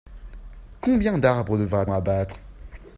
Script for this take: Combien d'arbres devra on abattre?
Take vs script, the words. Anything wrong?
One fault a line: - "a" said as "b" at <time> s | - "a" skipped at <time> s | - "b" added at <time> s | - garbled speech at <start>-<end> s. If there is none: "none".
none